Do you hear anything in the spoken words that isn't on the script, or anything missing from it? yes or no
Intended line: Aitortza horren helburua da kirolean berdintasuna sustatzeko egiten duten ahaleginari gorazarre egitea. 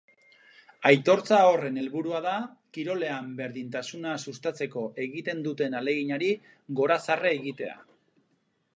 no